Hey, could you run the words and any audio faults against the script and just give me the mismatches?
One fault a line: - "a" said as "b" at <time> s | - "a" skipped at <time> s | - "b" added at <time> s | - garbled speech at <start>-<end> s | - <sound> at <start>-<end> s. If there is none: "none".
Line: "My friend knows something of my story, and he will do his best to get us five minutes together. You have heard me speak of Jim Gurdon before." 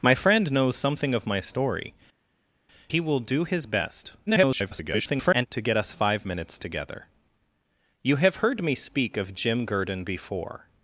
- "and" skipped at 1.9 s
- garbled speech at 4.3-5.5 s